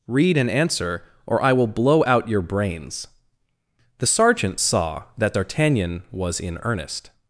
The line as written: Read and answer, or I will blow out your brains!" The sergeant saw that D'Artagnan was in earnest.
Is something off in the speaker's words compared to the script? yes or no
no